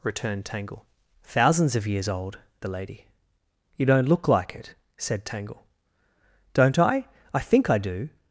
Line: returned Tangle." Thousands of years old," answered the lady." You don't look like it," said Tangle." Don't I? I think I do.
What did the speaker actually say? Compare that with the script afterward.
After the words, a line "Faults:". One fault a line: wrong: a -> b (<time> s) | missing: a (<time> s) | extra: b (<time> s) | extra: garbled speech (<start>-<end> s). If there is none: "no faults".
returned Tangle." Thousands of years old," the lady." You don't look like it," said Tangle." Don't I? I think I do.
Faults:
missing: answered (2.4 s)